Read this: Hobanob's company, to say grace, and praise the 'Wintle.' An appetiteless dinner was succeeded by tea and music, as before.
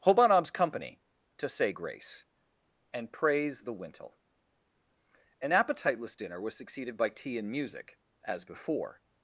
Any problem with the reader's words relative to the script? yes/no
no